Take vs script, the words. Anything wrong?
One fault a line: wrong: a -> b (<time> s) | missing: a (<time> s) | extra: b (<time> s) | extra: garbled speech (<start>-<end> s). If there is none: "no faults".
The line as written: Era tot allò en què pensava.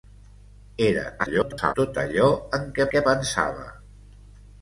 extra: garbled speech (1.2-1.7 s)
extra: què (2.9 s)